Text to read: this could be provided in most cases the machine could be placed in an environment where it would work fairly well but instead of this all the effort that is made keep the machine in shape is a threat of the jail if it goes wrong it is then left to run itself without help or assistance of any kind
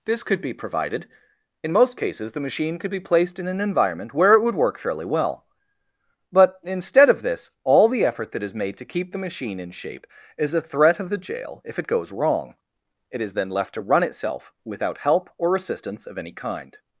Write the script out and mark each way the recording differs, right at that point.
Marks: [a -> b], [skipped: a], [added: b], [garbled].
this could be provided in most cases the machine could be placed in an environment where it would work fairly well but instead of this all the effort that is made [added: to] keep the machine in shape is a threat of the jail if it goes wrong it is then left to run itself without help or assistance of any kind